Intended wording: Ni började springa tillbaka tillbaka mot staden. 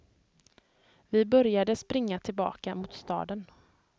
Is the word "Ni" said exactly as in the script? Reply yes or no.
no